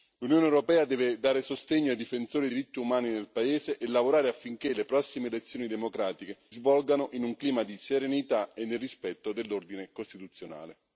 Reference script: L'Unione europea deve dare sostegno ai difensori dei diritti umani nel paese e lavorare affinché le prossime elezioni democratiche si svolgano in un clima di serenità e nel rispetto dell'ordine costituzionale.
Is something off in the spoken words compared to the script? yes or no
yes